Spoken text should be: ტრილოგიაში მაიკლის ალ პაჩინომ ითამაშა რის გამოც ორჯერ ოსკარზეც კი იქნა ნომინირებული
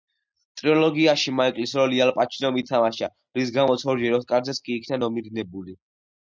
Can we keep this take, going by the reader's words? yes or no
no